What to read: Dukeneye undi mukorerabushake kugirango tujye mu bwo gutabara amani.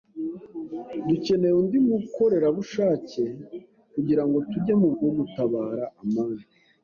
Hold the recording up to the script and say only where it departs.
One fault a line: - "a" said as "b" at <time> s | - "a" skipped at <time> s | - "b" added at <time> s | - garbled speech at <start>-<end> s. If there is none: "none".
none